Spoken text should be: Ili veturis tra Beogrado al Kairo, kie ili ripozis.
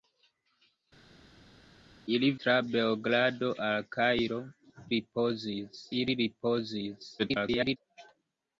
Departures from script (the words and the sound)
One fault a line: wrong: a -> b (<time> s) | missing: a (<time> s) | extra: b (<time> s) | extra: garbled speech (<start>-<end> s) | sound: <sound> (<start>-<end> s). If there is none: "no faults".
missing: veturis (2.3 s)
wrong: kie -> ripozis (5.0 s)
extra: garbled speech (7.2-7.8 s)